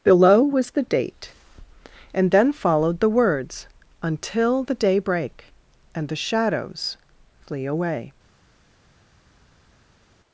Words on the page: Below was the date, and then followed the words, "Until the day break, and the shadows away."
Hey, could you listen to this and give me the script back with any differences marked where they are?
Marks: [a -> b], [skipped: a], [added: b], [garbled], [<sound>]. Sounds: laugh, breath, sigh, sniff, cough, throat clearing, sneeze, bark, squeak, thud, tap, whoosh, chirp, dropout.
Below was the date, and then followed the words, "Until the day break, and the shadows [added: flee] away."